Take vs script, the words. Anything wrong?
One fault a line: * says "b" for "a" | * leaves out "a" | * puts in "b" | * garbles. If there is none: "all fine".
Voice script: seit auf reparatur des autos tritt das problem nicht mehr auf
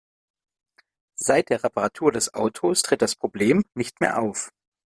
* says "der" for "auf"